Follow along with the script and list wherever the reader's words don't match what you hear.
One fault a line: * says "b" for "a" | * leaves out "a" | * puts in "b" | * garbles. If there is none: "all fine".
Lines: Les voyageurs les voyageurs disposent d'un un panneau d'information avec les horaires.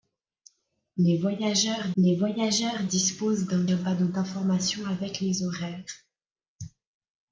all fine